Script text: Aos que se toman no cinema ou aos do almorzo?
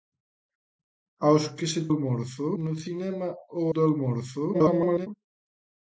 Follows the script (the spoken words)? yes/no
no